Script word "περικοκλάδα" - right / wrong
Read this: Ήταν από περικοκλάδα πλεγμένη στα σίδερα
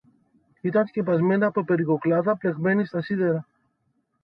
right